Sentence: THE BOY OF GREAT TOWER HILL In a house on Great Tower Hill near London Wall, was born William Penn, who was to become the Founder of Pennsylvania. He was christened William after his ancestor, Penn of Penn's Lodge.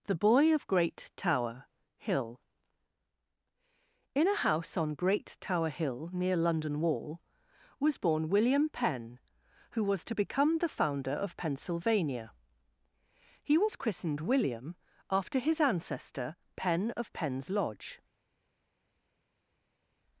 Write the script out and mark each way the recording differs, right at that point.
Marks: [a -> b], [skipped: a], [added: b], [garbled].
THE BOY OF GREAT TOWER HILL In a house on Great Tower Hill near London Wall, was born William Penn, who was to become the Founder of Pennsylvania. He was christened William after his ancestor, Penn of Penn's Lodge.